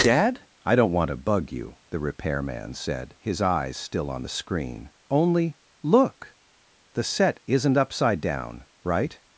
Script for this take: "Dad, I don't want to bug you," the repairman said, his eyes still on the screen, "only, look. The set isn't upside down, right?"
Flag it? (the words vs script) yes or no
no